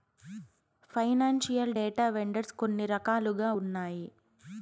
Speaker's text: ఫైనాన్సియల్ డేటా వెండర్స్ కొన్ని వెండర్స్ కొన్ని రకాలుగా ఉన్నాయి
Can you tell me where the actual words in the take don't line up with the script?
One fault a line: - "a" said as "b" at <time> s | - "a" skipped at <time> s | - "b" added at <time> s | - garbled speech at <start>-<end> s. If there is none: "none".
- "వెండర్స్ కొన్ని" skipped at 2.8 s